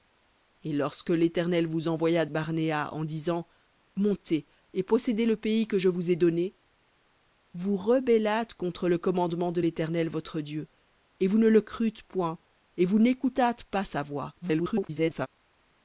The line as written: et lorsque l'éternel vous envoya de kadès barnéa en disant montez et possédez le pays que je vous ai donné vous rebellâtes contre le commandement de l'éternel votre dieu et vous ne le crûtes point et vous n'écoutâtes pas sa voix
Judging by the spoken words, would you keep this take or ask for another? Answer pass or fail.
fail